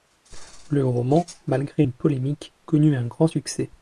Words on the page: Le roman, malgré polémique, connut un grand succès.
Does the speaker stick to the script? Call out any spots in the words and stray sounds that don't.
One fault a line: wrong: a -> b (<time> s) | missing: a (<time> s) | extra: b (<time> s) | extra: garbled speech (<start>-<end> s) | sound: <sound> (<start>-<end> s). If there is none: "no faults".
extra: une (1.8 s)